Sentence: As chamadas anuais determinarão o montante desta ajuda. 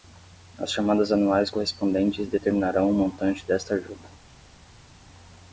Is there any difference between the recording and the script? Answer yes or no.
yes